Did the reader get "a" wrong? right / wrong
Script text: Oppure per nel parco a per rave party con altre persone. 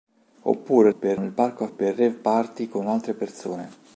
right